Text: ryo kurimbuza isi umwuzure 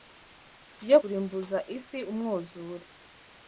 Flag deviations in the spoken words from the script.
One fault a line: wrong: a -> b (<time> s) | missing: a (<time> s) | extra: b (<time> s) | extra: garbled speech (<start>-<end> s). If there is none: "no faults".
no faults